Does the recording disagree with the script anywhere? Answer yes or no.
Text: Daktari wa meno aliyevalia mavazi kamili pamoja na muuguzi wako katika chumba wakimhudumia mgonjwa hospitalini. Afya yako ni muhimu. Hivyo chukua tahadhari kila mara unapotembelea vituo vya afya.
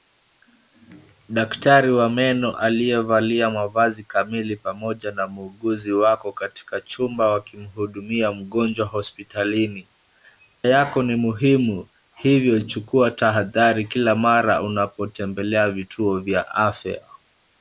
yes